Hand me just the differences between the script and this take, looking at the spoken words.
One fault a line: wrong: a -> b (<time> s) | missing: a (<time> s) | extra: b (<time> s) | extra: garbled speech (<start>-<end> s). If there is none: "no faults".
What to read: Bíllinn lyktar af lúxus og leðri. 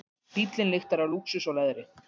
no faults